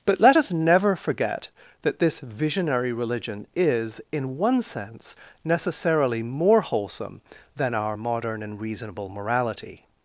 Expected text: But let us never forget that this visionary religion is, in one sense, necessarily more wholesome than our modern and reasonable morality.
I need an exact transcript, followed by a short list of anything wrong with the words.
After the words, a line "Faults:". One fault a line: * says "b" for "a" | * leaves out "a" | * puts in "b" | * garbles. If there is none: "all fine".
But let us never forget that this visionary religion is, in one sense, necessarily more wholesome than our modern and reasonable morality.
Faults:
all fine